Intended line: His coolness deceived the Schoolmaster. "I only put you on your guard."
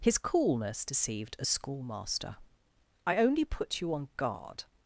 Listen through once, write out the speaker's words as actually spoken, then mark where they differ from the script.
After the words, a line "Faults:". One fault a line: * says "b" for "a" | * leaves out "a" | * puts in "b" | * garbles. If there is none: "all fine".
His coolness deceived a Schoolmaster. "I only put you on guard."
Faults:
* says "a" for "the"
* leaves out "your"